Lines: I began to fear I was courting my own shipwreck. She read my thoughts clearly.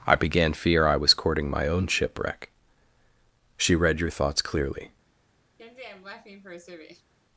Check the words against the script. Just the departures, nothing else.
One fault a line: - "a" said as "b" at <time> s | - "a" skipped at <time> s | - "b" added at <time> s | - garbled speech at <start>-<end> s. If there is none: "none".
- "to" skipped at 0.5 s
- "my" said as "your" at 4.0 s